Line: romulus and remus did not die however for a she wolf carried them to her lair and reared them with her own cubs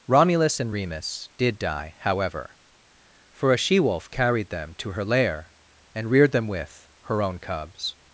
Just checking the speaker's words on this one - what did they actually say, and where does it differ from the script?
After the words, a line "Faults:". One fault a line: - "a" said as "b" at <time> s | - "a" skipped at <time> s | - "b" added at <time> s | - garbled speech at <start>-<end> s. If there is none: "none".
romulus and remus did die however for a she wolf carried them to her lair and reared them with her own cubs
Faults:
- "not" skipped at 1.6 s